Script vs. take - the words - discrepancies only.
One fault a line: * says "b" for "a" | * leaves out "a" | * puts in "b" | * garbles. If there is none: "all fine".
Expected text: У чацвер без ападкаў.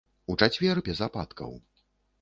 all fine